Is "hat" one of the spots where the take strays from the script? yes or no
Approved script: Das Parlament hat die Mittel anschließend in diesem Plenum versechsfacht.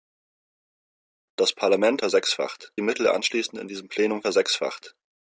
yes